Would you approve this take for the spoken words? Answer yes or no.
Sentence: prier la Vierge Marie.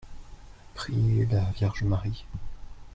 yes